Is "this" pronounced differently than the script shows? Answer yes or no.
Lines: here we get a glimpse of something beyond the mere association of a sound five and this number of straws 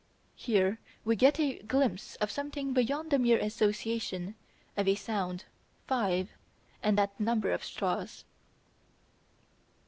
yes